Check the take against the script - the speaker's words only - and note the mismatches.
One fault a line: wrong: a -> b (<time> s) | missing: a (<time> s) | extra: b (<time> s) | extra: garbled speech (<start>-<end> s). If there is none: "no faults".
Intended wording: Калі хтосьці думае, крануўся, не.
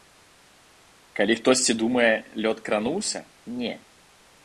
extra: лёд (2.5 s)